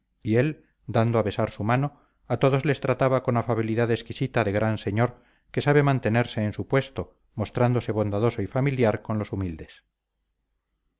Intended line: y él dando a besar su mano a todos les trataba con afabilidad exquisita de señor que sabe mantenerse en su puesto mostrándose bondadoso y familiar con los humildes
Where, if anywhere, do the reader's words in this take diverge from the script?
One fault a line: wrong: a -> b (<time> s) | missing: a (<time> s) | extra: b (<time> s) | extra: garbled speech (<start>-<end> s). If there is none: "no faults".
extra: gran (4.5 s)